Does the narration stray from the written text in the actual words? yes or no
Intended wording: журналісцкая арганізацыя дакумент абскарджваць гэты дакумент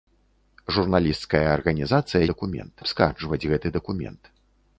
no